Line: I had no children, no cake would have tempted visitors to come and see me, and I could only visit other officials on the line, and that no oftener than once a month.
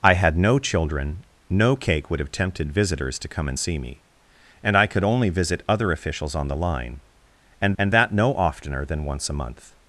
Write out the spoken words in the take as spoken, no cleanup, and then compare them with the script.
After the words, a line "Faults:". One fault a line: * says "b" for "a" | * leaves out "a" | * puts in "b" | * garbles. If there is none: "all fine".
I had no children, no cake would have tempted visitors to come and see me, and I could only visit other officials on the line, and and that no oftener than once a month.
Faults:
* puts in "and"